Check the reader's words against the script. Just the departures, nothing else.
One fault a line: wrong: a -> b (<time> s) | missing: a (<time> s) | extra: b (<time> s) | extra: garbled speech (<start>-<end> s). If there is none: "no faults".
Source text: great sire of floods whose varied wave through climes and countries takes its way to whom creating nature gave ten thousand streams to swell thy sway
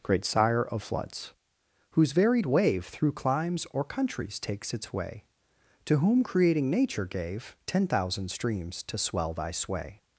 wrong: and -> or (3.7 s)